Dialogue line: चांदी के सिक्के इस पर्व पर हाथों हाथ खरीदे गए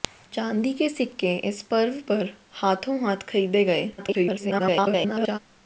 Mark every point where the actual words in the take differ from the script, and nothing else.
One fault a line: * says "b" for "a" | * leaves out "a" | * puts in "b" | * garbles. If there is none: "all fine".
* garbles